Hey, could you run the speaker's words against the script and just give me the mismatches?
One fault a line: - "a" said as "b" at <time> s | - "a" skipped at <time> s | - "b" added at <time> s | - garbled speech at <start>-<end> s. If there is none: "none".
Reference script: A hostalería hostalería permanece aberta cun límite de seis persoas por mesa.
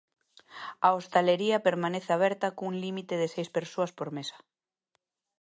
- "hostalería" skipped at 1.6 s